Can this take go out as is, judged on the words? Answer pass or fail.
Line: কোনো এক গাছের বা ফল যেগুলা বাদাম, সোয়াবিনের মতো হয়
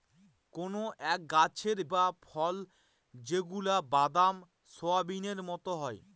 pass